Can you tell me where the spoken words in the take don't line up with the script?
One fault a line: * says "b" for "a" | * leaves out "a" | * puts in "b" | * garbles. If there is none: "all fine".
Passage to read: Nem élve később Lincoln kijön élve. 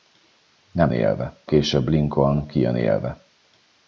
all fine